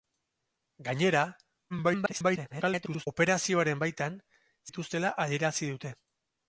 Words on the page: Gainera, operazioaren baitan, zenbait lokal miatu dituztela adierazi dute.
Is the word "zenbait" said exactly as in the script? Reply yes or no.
no